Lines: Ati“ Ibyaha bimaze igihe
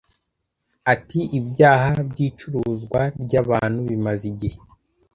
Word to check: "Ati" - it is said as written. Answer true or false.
true